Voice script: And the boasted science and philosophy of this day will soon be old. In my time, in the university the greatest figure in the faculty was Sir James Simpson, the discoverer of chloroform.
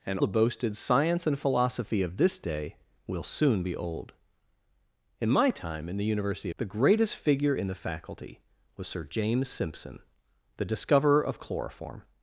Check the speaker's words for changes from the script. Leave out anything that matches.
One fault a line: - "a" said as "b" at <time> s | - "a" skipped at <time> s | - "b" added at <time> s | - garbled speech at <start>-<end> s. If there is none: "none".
none